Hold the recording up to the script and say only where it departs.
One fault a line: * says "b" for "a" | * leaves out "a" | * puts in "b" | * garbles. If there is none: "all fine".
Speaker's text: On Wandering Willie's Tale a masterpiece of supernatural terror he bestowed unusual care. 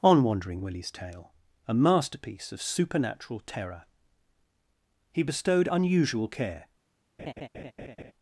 all fine